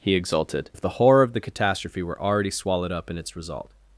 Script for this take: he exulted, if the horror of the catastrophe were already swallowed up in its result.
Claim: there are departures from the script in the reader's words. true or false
false